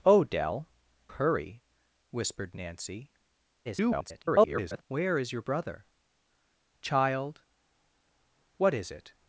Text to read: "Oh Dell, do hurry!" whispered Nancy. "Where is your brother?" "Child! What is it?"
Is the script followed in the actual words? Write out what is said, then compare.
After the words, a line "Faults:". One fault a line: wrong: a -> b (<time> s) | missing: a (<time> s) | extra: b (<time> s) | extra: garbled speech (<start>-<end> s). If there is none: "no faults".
"Oh Dell, hurry!" whispered Nancy. [garbled] "Where is your brother?" "Child! What is it?"
Faults:
missing: do (0.7 s)
extra: garbled speech (3.6-4.8 s)